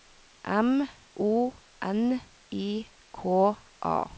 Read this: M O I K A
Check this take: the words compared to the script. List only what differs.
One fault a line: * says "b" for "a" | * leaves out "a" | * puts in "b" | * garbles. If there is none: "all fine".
* puts in "N"